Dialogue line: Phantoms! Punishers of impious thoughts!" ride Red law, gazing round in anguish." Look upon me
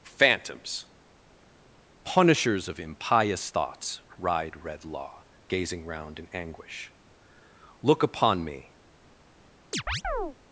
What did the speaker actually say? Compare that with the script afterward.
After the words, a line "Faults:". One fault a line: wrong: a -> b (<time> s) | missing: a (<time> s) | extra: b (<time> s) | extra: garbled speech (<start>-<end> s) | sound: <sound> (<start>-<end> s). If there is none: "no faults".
Phantoms! Punishers of impious thoughts!" ride Red law, gazing round in anguish." Look upon me
Faults:
sound: chirp (9.7-10.4 s)